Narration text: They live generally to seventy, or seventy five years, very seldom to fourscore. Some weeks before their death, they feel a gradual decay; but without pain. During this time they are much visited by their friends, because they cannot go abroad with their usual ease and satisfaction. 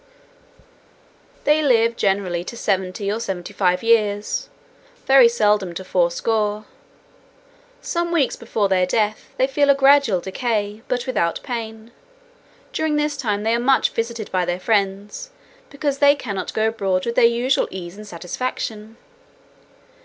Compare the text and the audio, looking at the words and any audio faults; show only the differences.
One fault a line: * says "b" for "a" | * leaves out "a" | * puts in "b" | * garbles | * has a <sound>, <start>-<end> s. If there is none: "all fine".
all fine